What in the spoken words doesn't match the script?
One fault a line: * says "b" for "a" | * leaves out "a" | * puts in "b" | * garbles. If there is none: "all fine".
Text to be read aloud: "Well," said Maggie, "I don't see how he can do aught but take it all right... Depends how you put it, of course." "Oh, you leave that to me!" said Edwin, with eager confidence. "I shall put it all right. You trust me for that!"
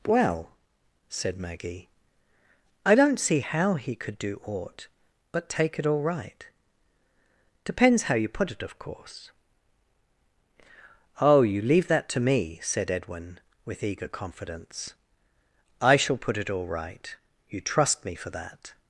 * says "could" for "can"